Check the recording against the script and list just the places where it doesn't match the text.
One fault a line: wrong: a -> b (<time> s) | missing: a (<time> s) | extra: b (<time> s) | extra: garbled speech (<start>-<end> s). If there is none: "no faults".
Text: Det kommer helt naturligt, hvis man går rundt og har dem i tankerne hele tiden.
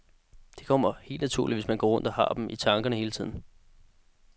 no faults